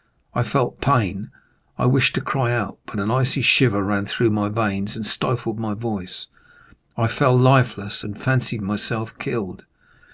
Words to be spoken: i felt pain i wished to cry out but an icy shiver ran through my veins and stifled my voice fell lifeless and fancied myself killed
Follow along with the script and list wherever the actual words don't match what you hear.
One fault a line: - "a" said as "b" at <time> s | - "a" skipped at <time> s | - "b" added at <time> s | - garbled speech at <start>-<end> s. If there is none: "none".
- "i" added at 7.0 s